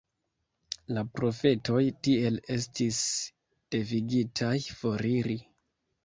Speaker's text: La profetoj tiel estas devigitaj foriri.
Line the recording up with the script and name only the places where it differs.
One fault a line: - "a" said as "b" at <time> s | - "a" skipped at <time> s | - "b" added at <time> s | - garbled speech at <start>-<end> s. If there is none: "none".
- "estas" said as "estis" at 2.5 s